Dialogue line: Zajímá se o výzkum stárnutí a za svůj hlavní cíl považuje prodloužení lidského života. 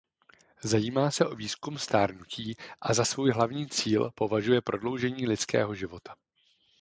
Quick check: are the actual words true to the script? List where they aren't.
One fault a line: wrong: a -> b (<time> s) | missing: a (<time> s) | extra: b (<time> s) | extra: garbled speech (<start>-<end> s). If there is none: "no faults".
no faults